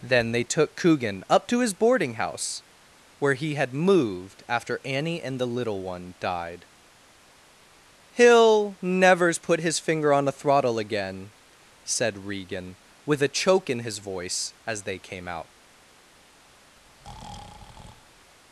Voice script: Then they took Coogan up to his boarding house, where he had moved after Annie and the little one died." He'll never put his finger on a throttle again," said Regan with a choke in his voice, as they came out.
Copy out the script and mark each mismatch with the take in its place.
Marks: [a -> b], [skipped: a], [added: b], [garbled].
Then they took Coogan up to his boarding house, where he had moved after Annie and the little one died." He'll [never -> nevers] put his finger on a throttle again," said Regan with a choke in his voice, as they came out.